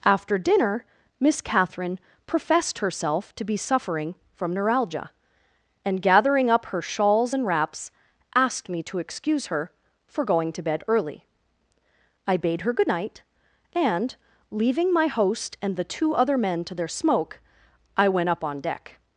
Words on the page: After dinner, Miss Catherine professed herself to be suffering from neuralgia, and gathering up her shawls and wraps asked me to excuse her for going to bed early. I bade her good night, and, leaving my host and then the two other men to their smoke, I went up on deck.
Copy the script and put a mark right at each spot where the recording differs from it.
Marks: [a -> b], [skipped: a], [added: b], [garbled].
After dinner, Miss Catherine professed herself to be suffering from neuralgia, and gathering up her shawls and wraps asked me to excuse her for going to bed early. I bade her good night, and, leaving my host and [skipped: then] the two other men to their smoke, I went up on deck.